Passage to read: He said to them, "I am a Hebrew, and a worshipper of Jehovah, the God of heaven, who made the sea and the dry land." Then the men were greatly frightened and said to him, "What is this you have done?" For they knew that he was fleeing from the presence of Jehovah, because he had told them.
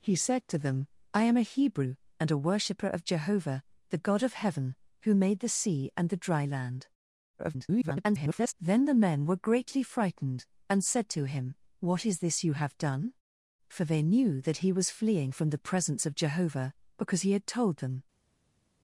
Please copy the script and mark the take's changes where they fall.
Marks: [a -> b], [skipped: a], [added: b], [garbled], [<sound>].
He said to them, "I am a Hebrew, and a worshipper of Jehovah, the God of heaven, who made the sea and the dry land." [garbled] Then the men were greatly frightened and said to him, "What is this you have done?" For they knew that he was fleeing from the presence of Jehovah, because he had told them.